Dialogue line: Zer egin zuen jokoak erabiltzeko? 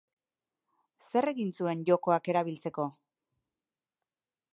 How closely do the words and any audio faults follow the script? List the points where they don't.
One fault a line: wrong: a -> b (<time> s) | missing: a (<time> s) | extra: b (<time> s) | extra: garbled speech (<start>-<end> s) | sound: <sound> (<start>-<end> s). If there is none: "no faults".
no faults